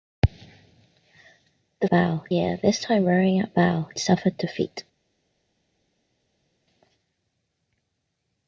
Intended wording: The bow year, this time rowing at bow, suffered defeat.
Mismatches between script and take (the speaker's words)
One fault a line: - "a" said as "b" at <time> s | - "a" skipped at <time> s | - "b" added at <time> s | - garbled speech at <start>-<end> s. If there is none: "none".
none